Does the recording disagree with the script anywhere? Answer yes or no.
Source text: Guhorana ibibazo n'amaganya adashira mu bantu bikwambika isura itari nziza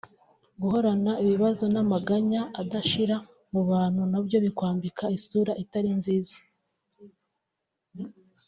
yes